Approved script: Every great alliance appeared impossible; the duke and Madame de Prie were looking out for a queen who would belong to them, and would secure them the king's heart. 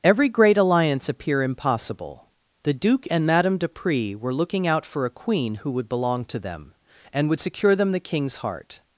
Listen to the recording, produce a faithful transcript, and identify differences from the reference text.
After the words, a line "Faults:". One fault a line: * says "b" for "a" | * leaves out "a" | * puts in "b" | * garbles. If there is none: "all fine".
Every great alliance appear impossible; the duke and Madame de Prie were looking out for a queen who would belong to them, and would secure them the king's heart.
Faults:
* says "appear" for "appeared"